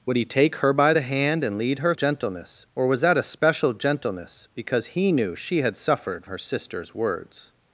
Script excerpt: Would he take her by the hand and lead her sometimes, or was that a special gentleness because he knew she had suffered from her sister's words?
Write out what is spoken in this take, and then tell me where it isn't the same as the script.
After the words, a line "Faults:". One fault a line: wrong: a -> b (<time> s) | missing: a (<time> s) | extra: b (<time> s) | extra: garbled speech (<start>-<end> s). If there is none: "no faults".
Would he take her by the hand and lead her gentleness, or was that a special gentleness because he knew she had suffered her sister's words?
Faults:
wrong: sometimes -> gentleness (1.9 s)
missing: from (6.2 s)